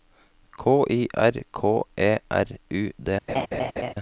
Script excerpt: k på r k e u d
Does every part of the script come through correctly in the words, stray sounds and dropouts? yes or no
no